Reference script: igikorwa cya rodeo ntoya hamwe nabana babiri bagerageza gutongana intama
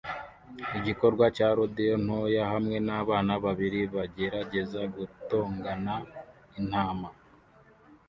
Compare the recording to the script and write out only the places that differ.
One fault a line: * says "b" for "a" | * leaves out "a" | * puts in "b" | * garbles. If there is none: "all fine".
all fine